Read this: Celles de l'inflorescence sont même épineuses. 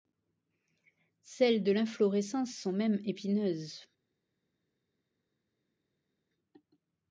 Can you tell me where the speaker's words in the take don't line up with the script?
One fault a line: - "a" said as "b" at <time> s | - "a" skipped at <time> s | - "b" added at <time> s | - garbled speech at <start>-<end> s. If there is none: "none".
none